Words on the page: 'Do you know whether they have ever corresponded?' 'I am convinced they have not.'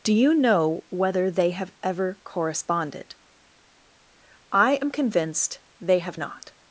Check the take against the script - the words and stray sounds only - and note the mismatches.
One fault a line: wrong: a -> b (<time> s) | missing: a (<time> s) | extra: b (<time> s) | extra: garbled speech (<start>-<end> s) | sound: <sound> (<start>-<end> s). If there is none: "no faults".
no faults